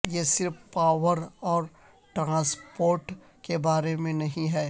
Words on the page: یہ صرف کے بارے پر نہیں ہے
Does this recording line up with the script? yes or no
no